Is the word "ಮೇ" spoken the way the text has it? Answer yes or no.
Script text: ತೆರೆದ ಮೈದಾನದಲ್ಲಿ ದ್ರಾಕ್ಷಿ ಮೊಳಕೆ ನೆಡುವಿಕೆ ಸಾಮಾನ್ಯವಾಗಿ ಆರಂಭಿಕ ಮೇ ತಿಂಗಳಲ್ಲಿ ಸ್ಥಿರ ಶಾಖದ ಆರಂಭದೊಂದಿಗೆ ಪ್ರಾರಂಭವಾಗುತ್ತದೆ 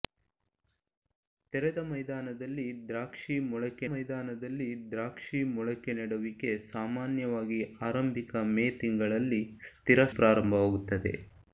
yes